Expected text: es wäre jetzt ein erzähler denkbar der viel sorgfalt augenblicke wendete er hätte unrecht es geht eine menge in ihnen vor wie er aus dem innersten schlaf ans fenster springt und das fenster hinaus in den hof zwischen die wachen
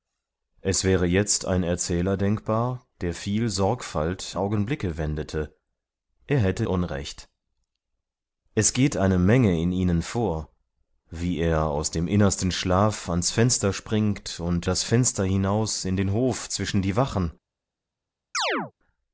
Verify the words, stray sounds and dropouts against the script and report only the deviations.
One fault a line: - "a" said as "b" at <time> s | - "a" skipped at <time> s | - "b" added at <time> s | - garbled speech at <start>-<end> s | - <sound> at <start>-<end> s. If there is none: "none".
- chirp at 18.3-18.7 s